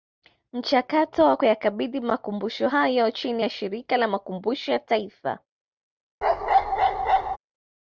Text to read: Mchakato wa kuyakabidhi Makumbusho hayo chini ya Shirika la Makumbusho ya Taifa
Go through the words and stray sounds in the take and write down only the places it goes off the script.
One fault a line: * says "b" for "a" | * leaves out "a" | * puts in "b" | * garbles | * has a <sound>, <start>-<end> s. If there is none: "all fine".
* has a bark, 6.2-7.4 s